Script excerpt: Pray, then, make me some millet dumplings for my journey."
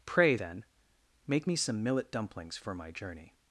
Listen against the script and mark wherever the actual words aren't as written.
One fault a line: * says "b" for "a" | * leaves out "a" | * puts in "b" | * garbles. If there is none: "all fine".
all fine